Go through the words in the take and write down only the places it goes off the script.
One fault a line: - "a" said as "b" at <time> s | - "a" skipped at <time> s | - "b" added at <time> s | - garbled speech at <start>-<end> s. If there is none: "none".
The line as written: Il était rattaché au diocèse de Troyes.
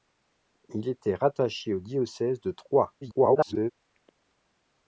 - garbled speech at 3.0-3.7 s